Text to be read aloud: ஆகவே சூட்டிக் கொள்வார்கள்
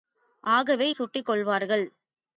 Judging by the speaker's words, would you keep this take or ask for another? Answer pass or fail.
pass